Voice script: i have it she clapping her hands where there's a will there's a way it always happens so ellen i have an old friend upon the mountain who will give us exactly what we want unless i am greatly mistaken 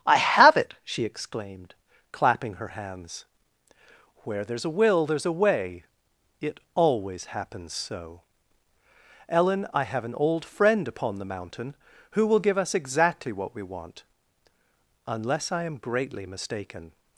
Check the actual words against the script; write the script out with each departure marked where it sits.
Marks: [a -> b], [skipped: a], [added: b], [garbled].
i have it she [added: exclaimed] clapping her hands where there's a will there's a way it always happens so ellen i have an old friend upon the mountain who will give us exactly what we want unless i am greatly mistaken